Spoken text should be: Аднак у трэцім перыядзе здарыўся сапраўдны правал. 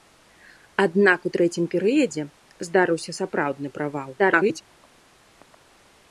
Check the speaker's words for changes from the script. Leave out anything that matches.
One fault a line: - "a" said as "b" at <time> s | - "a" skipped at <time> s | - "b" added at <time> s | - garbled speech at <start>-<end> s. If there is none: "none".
- garbled speech at 4.2-4.6 s